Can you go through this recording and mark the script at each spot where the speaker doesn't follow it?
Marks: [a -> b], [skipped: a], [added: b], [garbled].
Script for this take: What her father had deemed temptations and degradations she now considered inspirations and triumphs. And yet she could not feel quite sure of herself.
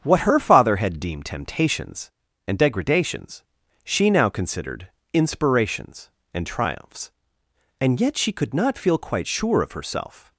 What her father had deemed temptations and degradations she now considered inspirations and triumphs. And yet she could not feel quite sure of herself.